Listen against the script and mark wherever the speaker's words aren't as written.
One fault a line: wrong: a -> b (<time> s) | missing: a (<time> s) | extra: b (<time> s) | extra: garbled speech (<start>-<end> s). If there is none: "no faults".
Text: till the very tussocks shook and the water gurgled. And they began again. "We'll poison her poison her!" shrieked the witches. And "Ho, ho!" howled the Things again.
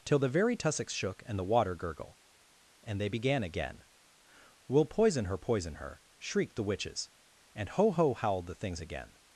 wrong: gurgled -> gurgle (1.8 s)